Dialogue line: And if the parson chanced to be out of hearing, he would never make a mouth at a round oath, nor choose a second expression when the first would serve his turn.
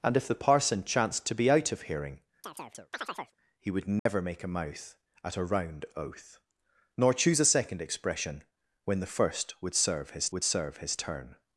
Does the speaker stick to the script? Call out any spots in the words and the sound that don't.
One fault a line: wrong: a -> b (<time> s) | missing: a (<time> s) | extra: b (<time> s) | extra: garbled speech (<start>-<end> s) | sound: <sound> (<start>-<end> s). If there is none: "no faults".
sound: chirp (2.4-3.3 s)
sound: dropout (4.0-4.1 s)
extra: would serve his (10.3 s)